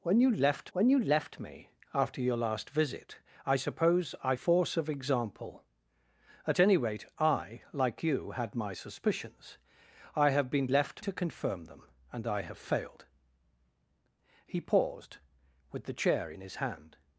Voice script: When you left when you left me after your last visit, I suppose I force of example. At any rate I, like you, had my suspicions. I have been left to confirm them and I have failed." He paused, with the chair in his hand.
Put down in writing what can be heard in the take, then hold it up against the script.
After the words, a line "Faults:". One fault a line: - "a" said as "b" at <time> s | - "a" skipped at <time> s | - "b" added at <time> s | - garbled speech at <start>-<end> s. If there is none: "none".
When you left when you left me after your last visit, I suppose I force of example. At any rate I, like you, had my suspicions. I have been left to confirm them and I have failed." He paused, with the chair in his hand.
Faults:
none